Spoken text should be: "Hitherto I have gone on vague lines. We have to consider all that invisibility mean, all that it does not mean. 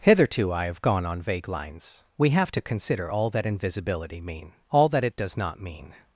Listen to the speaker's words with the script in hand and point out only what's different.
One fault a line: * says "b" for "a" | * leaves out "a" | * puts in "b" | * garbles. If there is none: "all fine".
all fine